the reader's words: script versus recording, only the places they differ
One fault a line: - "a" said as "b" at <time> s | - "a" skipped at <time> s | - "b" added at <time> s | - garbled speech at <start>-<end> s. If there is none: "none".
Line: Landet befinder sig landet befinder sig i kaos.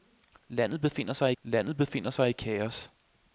none